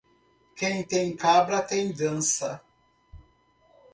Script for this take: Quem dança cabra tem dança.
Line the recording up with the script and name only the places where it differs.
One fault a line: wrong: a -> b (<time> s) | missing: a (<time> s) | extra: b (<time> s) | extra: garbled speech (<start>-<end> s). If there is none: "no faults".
wrong: dança -> tem (0.8 s)